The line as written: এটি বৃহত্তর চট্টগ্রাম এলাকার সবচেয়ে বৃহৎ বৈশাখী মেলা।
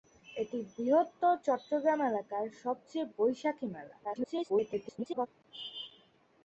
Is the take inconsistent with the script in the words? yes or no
yes